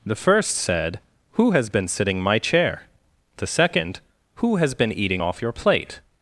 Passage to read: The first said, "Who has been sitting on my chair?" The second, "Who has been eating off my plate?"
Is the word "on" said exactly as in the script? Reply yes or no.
no